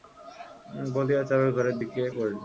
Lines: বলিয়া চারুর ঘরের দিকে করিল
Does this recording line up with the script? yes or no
yes